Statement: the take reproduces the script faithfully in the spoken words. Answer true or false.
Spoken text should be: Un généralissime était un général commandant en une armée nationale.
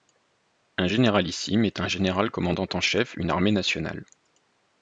false